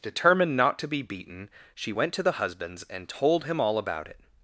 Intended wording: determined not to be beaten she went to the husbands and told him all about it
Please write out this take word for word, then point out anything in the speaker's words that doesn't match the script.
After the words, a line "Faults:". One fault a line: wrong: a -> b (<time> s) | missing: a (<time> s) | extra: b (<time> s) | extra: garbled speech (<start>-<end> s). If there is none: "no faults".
determined not to be beaten she went to the husbands and told him all about it
Faults:
no faults